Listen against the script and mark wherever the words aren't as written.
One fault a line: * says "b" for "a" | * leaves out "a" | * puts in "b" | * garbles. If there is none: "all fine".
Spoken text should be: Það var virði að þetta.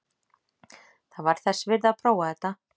* puts in "þess"
* puts in "prófa"